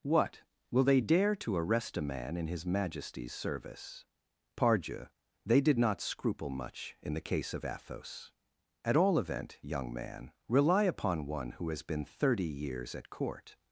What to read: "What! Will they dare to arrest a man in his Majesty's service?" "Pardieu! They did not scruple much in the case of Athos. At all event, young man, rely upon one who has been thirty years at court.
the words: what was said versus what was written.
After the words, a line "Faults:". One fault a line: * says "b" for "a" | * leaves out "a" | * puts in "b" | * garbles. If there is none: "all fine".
"What! Will they dare to arrest a man in his Majesty's service?" "Pardieu! They did not scruple much in the case of Athos. At all event, young man, rely upon one who has been thirty years at court.
Faults:
all fine